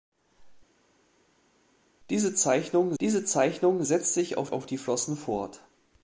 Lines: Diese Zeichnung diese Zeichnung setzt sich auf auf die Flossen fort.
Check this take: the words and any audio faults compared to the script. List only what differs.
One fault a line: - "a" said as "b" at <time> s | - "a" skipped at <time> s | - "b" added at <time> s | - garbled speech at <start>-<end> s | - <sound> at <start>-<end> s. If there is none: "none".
none